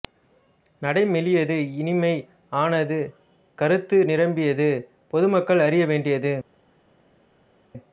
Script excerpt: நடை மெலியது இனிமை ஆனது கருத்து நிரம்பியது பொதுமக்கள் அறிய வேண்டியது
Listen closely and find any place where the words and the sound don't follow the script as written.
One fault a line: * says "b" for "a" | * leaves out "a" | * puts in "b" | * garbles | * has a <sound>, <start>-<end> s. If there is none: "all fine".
all fine